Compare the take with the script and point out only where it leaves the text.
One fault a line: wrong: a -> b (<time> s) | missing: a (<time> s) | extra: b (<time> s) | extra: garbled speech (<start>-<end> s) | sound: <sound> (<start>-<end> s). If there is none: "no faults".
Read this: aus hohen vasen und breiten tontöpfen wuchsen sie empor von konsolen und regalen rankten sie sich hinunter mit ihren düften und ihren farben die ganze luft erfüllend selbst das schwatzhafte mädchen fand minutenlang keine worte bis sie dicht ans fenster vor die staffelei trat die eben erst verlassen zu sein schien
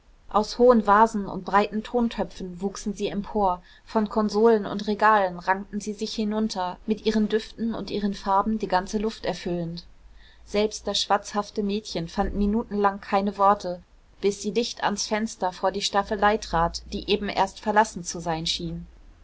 no faults